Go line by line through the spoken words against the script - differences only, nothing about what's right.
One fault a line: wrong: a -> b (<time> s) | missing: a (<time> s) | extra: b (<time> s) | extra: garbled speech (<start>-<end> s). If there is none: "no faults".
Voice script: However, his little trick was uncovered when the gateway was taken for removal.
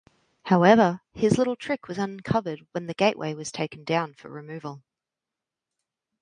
extra: down (3.8 s)